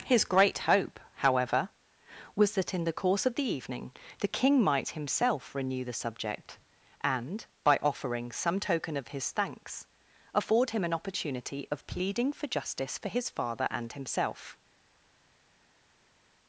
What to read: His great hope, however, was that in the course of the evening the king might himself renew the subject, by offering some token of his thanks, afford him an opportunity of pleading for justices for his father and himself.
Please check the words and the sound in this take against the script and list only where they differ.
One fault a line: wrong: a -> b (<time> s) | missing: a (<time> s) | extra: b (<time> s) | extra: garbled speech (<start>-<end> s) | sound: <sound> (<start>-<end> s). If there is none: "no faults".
extra: and (7.0 s)
wrong: justices -> justice (12.5 s)